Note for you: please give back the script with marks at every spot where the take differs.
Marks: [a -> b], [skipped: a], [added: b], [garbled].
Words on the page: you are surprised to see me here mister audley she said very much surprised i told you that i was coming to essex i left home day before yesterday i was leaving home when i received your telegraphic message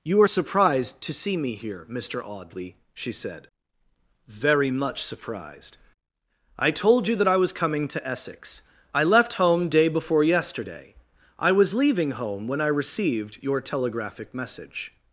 you are surprised to see me here mister audley she said very much surprised i told you that i was coming to essex i left home day before yesterday i was leaving home when i received your telegraphic message